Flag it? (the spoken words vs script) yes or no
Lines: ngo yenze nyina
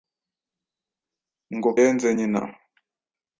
no